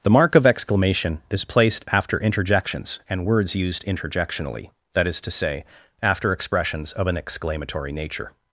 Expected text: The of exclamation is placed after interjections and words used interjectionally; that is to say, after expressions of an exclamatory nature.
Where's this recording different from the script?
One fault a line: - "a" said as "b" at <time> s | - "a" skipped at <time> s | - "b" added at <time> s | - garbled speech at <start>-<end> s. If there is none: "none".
- "mark" added at 0.1 s